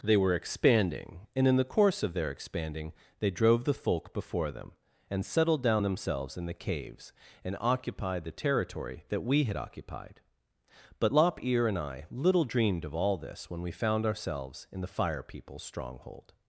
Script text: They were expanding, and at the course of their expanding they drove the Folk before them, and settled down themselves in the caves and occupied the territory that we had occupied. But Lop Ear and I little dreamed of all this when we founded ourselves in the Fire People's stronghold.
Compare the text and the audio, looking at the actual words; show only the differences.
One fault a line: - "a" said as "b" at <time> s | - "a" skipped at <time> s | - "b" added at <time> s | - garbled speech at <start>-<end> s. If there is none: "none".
- "at" said as "in" at 1.5 s
- "founded" said as "found" at 13.7 s